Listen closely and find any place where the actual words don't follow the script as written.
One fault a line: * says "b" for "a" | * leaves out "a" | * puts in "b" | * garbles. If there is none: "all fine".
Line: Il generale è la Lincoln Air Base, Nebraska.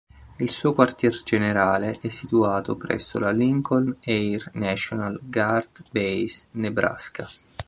* puts in "suo quartier"
* puts in "situato presso"
* puts in "National Guard"